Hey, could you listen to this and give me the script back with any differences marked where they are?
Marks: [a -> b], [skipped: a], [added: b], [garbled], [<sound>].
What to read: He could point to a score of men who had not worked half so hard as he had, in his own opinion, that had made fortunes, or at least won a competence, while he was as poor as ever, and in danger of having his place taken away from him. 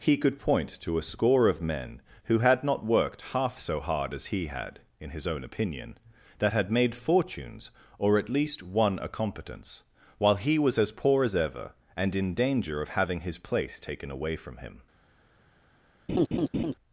He could point to a score of men who had not worked half so hard as he had, in his own opinion, that had made fortunes, or at least won a competence, while he was as poor as ever, and in danger of having his place taken away from him. [laugh]